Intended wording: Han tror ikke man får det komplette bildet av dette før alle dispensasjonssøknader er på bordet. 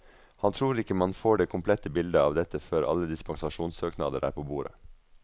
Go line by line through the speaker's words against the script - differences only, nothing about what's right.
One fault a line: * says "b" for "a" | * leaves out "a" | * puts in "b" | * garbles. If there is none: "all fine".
all fine